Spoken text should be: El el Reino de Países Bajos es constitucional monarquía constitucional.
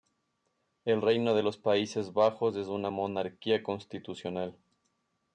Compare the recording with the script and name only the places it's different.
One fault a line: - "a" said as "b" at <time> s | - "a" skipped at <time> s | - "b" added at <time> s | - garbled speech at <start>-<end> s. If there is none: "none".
- "el" skipped at 1.0 s
- "los" added at 1.4 s
- "constitucional" said as "una" at 2.7 s